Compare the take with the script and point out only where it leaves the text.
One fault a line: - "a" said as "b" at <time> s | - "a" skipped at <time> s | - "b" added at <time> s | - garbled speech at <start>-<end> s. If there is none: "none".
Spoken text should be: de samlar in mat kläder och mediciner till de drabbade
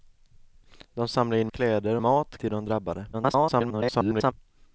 - "mat" skipped at 1.5 s
- "mediciner" said as "mat" at 2.0 s
- garbled speech at 3.1-4.3 s